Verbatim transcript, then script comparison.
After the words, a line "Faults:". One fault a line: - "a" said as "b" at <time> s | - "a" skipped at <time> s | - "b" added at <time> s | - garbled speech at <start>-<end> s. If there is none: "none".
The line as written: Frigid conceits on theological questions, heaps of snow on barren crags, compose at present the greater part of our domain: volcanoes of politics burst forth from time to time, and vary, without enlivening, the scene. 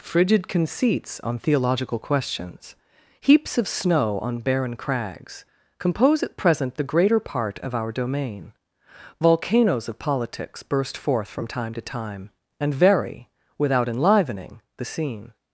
Frigid conceits on theological questions, heaps of snow on barren crags, compose at present the greater part of our domain: volcanoes of politics burst forth from time to time, and vary, without enlivening, the scene.
Faults:
none